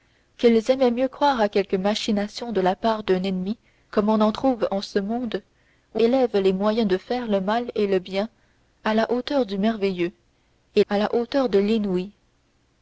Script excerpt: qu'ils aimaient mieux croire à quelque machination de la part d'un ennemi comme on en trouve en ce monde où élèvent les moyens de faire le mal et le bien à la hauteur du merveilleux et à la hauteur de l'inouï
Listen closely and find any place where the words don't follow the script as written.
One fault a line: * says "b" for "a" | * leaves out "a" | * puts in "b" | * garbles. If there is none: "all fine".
all fine